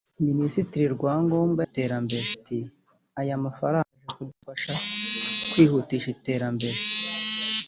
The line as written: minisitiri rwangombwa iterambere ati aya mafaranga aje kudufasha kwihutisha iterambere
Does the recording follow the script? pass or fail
pass